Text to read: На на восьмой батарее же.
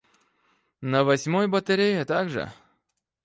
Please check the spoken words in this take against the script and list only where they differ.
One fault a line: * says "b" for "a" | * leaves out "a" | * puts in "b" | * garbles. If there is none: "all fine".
* leaves out "на"
* puts in "так"